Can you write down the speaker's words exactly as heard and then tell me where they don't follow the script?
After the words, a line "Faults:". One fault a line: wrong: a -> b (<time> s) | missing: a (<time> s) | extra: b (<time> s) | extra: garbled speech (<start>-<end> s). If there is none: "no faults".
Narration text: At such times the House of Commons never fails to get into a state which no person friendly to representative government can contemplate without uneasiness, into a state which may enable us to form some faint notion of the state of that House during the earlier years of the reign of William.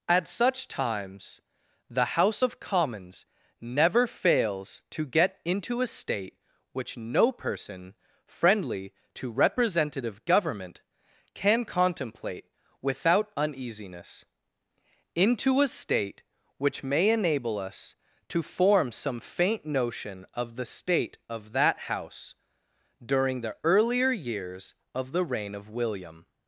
At such times the House of Commons never fails to get into a state which no person friendly to representative government can contemplate without uneasiness, into a state which may enable us to form some faint notion of the state of that House during the earlier years of the reign of William.
Faults:
no faults